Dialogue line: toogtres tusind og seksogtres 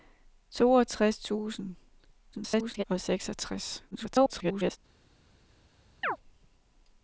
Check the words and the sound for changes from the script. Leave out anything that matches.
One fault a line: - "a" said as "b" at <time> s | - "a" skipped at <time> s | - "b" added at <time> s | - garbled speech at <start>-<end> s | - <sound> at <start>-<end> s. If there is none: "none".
- garbled speech at 2.3-2.8 s
- garbled speech at 3.9-4.8 s
- chirp at 6.0-6.2 s